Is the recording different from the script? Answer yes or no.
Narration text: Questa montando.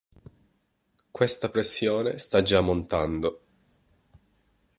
yes